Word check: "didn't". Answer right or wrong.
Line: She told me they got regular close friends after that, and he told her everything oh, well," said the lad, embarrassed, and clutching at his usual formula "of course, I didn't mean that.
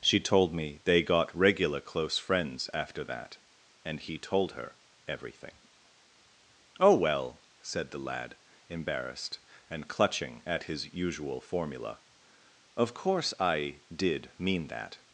wrong